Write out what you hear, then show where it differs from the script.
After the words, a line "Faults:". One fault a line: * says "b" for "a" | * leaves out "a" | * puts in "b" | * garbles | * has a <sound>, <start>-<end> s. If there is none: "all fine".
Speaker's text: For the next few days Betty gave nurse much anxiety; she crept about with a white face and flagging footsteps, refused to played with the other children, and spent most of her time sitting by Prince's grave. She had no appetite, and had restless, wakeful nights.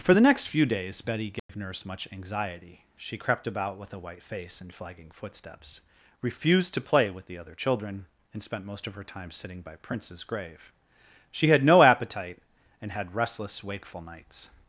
For the next few days Betty gave nurse much anxiety; she crept about with a white face and flagging footsteps, refused to play with the other children, and spent most of her time sitting by Prince's grave. She had no appetite, and had restless, wakeful nights.
Faults:
* has a dropout, 1.4-1.5 s
* says "play" for "played"